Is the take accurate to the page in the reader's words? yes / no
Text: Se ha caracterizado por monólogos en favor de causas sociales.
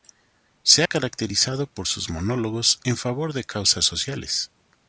no